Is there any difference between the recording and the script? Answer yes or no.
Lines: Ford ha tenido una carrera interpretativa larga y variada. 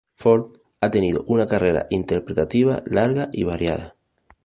no